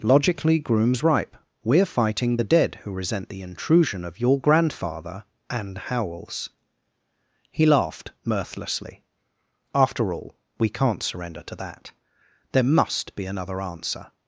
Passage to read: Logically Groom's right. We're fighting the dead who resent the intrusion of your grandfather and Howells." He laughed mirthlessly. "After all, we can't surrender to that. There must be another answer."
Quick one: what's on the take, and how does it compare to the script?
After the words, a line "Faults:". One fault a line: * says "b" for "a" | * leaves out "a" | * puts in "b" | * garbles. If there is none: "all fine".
Logically Groom's ripe. We're fighting the dead who resent the intrusion of your grandfather and Howells." He laughed mirthlessly. "After all, we can't surrender to that. There must be another answer."
Faults:
* says "ripe" for "right"